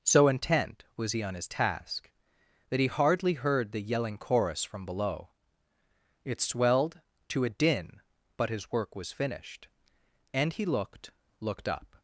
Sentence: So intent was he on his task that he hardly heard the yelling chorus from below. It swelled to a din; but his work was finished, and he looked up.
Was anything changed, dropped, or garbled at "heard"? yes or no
no